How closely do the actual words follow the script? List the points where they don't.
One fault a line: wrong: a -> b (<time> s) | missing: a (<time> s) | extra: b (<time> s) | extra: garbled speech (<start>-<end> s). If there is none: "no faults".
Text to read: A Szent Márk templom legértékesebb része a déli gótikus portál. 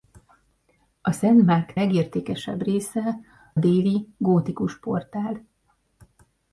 missing: templom (1.8 s)
missing: a (3.2 s)